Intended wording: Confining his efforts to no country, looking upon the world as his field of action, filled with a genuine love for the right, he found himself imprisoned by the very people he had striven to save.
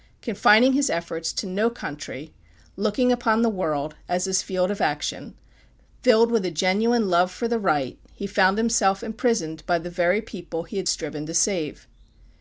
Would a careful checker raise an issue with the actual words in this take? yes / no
no